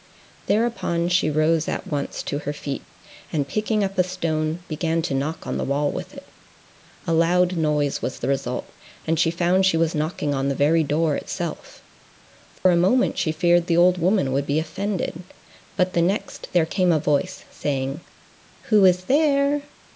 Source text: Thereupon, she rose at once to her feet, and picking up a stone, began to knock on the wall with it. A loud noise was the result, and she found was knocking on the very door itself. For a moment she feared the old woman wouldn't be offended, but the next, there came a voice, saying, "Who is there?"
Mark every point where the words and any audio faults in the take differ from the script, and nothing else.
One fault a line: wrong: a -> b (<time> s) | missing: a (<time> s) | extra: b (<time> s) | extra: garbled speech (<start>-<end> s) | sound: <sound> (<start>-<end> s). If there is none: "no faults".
extra: she (9.6 s)
sound: dropout (12.6-12.7 s)
wrong: wouldn't -> would (14.3 s)